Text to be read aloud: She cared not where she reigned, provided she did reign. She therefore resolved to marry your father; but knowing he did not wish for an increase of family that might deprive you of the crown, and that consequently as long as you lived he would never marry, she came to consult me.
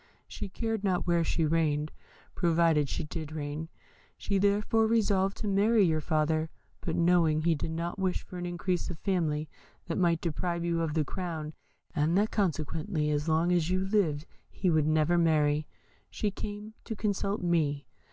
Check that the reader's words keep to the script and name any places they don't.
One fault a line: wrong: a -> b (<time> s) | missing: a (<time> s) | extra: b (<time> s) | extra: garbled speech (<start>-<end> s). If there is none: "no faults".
no faults